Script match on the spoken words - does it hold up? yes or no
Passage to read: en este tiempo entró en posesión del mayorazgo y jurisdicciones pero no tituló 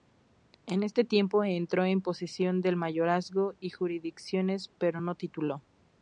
yes